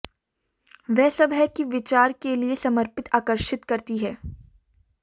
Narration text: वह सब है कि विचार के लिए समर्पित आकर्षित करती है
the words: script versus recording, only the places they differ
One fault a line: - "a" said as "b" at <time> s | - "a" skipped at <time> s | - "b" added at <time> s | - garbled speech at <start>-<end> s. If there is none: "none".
none